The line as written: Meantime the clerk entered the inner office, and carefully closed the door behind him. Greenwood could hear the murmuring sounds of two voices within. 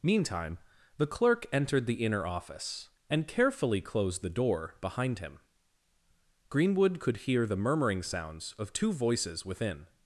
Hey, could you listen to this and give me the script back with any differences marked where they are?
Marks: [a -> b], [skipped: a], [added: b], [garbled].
Meantime the clerk entered the inner office, and carefully closed the door behind him. Greenwood could hear the murmuring sounds of two voices within.